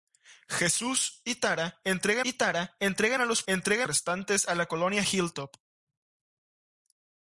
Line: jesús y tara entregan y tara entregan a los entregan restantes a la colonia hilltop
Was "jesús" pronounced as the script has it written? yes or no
yes